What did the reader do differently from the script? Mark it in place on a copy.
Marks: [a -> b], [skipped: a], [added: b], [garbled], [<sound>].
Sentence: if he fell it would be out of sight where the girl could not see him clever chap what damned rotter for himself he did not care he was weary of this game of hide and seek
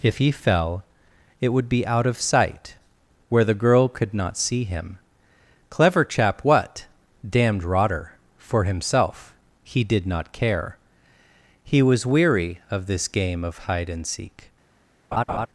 if he fell it would be out of sight where the girl could not see him clever chap what damned rotter for himself he did not care he was weary of this game of hide and seek [laugh]